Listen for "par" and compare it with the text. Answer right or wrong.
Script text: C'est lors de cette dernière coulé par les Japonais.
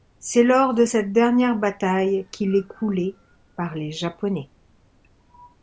right